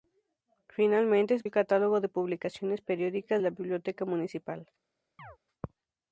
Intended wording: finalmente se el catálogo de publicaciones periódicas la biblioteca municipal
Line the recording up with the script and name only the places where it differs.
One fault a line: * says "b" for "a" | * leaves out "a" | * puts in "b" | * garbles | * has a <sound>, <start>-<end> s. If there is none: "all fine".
* has a chirp, 5.2-5.4 s